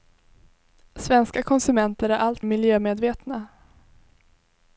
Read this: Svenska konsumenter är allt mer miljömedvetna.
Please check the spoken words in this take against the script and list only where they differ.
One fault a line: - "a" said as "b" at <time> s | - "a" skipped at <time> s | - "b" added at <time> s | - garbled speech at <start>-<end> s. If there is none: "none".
- "mer" skipped at 2.5 s